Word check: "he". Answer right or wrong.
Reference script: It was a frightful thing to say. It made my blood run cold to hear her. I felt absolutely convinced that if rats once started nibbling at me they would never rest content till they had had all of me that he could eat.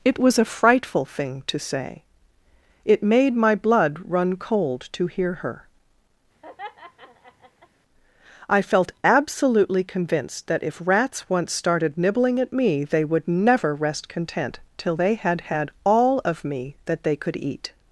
wrong